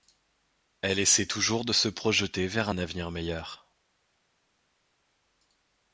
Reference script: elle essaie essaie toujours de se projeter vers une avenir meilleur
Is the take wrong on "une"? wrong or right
wrong